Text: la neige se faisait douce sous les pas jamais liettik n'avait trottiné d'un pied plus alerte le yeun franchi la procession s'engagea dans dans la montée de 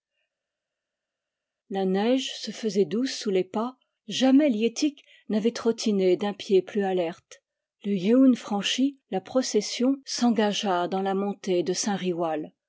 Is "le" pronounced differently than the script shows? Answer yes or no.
no